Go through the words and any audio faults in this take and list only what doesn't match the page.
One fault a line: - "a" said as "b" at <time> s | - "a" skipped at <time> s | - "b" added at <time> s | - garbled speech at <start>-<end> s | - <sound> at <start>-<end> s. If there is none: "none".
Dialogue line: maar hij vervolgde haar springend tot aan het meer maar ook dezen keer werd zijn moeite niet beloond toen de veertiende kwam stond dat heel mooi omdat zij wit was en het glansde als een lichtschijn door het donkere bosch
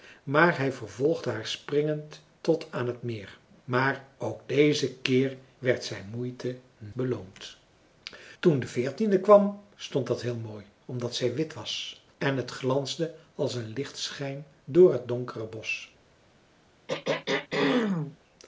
- "niet" skipped at 6.6 s
- throat clearing at 16.9-18.2 s